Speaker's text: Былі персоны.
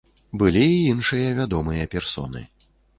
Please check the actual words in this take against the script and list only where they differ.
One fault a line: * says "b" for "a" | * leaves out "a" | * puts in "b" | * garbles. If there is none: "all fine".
* puts in "і іншыя вядомыя"